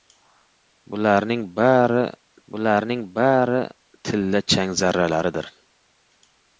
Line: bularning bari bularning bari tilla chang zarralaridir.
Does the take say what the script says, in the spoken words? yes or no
yes